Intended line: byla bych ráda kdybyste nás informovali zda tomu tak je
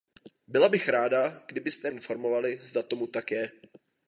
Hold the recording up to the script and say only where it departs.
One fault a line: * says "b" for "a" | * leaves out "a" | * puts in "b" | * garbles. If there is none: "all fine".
* leaves out "nás"